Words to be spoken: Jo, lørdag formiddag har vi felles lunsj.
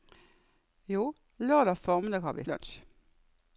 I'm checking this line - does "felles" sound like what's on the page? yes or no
no